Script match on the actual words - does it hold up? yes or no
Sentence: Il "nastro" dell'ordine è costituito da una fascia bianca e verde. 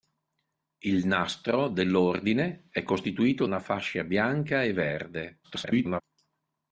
no